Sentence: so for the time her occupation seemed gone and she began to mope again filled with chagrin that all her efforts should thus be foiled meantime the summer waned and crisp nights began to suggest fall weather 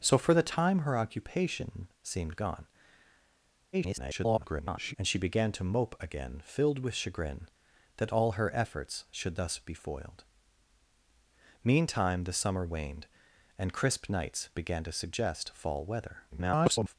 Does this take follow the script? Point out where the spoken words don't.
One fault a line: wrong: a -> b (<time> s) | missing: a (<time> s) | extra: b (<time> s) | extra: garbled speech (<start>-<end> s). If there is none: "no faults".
extra: garbled speech (3.7-4.9 s)
extra: garbled speech (16.3-17.0 s)